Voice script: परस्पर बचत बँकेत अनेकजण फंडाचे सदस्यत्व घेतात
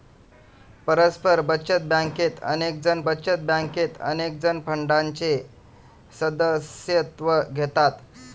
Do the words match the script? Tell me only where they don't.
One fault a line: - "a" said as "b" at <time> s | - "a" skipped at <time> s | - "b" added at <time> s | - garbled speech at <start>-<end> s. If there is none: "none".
- "बचत बँकेत अनेकजण" added at 3.1 s